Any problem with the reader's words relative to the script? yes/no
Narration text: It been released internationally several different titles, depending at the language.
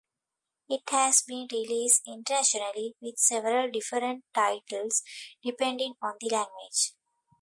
yes